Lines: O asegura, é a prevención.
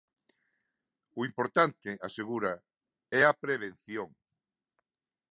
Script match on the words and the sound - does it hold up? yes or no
no